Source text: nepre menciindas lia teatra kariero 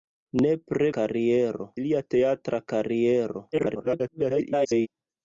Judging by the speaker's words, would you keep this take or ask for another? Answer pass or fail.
fail